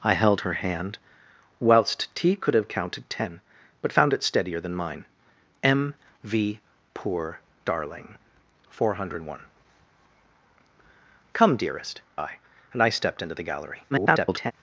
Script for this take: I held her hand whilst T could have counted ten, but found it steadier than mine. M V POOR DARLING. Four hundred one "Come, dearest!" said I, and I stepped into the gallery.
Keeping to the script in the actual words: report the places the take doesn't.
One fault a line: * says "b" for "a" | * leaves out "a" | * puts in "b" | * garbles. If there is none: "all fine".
* leaves out "said"
* garbles